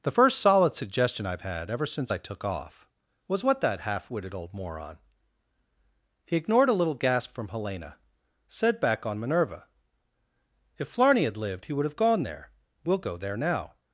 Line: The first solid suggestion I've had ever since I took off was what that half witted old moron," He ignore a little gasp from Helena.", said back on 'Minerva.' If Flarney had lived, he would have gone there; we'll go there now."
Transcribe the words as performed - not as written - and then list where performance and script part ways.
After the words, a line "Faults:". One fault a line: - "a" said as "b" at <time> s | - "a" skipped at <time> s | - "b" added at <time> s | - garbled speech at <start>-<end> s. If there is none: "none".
The first solid suggestion I've had ever since I took off was what that half witted old moron," He ignored a little gasp from Helena.", said back on 'Minerva.' If Flarney had lived, he would have gone there; we'll go there now."
Faults:
- "ignore" said as "ignored" at 6.4 s